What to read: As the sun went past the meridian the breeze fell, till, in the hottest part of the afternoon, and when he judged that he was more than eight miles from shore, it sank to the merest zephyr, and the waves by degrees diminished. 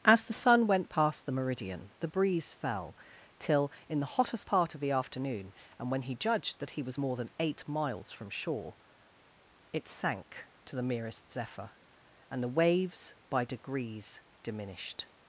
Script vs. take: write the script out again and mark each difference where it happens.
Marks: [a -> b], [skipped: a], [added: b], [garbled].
As the sun went past the meridian the breeze fell, till, in the hottest part of the afternoon, and when he judged that he was more than eight miles from shore, it sank to the merest zephyr, and the waves by degrees diminished.